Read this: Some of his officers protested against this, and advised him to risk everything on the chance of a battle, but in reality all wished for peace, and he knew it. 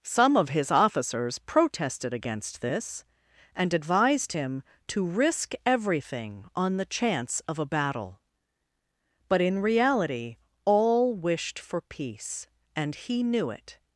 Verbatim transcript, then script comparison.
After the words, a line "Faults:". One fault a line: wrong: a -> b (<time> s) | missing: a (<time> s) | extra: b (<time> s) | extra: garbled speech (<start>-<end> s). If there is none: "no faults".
Some of his officers protested against this, and advised him to risk everything on the chance of a battle, but in reality all wished for peace, and he knew it.
Faults:
no faults